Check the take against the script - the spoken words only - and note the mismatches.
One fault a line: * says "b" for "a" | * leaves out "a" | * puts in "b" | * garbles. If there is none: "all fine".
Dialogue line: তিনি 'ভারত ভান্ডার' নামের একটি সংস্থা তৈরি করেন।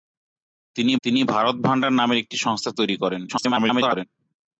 * puts in "তিনি"
* garbles